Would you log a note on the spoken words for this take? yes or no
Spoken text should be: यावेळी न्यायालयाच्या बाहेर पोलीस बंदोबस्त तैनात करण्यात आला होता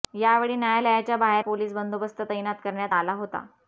no